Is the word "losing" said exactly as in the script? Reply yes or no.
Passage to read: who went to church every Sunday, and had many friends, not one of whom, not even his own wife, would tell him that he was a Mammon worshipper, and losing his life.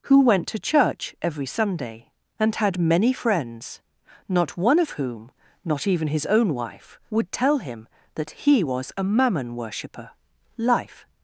no